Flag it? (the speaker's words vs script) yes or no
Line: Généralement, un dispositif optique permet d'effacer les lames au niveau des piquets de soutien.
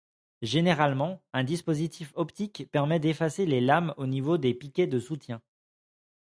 no